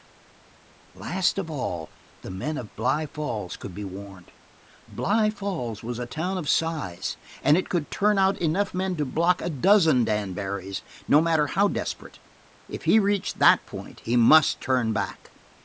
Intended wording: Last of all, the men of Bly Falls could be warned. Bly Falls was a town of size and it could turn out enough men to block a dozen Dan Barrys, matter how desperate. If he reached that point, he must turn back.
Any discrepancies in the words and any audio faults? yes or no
yes